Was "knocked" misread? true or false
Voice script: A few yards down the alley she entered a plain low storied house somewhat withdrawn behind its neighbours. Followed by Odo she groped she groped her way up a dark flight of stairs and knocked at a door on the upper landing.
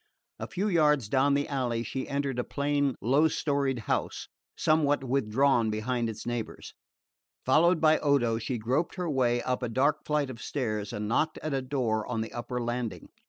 false